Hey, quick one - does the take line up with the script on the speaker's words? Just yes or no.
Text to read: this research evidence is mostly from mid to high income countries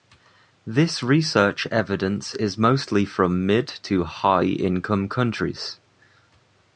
yes